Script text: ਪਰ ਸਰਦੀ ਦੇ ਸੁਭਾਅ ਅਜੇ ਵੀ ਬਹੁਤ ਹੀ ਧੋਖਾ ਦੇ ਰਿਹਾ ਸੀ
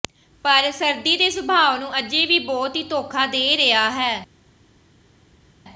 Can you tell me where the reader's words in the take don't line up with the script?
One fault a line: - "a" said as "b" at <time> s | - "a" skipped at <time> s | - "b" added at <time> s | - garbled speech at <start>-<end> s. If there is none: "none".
- "ਨੂੰ" added at 1.7 s
- "ਸੀ" said as "ਹੈ" at 3.9 s